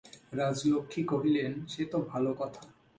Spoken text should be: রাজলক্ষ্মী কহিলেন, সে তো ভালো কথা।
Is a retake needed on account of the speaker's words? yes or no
no